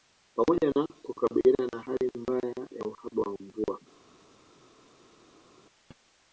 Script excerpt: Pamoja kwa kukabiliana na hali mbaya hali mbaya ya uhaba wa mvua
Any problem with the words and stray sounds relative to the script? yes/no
yes